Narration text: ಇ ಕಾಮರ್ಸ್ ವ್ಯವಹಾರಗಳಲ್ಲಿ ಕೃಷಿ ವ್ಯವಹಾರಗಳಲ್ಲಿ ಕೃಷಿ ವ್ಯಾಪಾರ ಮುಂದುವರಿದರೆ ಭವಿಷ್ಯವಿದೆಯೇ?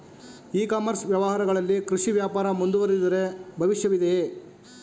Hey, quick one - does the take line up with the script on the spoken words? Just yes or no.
no